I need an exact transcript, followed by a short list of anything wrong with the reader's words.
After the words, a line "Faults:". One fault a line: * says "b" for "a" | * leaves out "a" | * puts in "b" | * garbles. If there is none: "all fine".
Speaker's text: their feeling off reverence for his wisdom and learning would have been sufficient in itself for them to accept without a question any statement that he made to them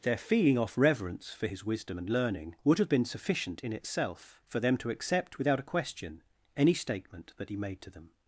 their feeling off reverence for his wisdom and learning would have been sufficient in itself for them to accept without a question any statement that he made to them
Faults:
all fine